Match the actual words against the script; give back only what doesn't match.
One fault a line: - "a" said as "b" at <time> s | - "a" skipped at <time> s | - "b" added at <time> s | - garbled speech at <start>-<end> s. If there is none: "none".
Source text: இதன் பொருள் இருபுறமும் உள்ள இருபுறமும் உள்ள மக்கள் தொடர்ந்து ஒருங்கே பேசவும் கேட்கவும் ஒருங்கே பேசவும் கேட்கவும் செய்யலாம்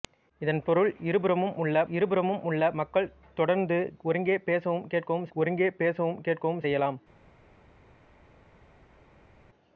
none